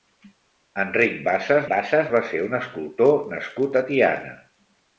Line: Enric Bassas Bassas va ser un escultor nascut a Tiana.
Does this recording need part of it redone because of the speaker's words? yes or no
no